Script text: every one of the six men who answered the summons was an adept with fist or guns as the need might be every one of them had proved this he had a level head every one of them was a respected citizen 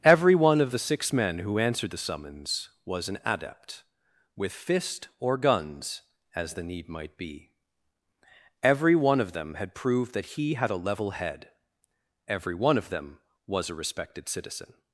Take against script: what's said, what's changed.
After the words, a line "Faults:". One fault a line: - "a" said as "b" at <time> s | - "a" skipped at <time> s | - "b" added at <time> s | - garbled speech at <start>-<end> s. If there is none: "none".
every one of the six men who answered the summons was an adept with fist or guns as the need might be every one of them had proved that he had a level head every one of them was a respected citizen
Faults:
- "this" said as "that" at 10.1 s